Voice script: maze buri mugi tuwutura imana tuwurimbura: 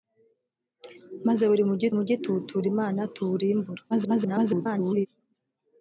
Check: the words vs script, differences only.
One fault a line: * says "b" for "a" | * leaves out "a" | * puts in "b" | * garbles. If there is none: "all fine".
* puts in "mugi"
* garbles